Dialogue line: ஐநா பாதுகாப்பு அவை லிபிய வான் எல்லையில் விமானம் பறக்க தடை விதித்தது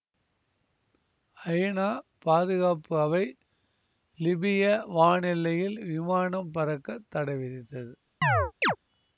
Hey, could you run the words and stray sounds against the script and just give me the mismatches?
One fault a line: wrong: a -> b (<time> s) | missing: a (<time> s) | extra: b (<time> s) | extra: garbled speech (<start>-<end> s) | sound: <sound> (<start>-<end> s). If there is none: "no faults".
sound: chirp (8.2-8.8 s)